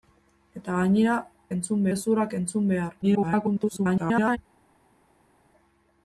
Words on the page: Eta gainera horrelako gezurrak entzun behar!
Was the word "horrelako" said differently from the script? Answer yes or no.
yes